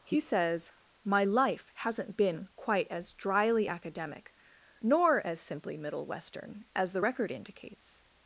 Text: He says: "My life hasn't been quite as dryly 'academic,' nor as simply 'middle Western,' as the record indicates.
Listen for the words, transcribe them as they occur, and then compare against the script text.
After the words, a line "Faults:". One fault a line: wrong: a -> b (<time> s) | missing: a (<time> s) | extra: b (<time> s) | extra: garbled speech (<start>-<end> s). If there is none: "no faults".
He says: "My life hasn't been quite as dryly 'academic,' nor as simply 'middle Western,' as the record indicates.
Faults:
no faults